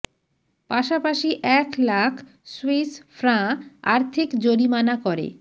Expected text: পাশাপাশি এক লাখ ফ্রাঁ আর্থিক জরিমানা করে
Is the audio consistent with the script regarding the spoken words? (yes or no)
no